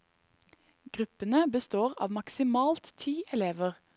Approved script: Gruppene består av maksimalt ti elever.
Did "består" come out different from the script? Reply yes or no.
no